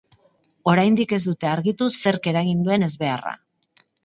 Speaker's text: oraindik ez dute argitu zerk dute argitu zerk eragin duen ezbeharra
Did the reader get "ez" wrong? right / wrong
right